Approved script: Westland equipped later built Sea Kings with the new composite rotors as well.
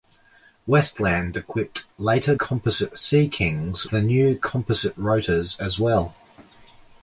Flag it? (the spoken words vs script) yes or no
yes